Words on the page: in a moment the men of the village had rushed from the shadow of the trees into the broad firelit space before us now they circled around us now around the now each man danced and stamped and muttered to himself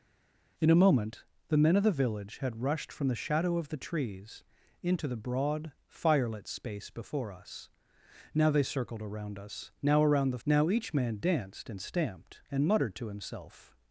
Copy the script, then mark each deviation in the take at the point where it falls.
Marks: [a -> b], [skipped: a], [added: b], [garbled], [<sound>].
in a moment the men of the village had rushed from the shadow of the trees into the broad firelit space before us now they circled around us now around the now each man danced and stamped and muttered to himself